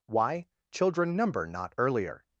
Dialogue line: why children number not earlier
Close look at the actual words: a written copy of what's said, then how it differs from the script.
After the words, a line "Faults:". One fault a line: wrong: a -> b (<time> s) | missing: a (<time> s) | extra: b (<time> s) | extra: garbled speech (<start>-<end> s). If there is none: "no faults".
why children number not earlier
Faults:
no faults